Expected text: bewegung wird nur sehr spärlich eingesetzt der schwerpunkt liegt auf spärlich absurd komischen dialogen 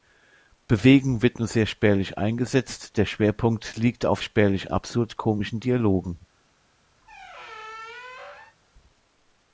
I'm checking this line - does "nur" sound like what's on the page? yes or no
yes